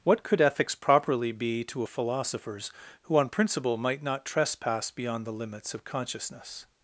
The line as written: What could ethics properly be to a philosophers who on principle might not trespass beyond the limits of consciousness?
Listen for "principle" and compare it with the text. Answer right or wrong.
right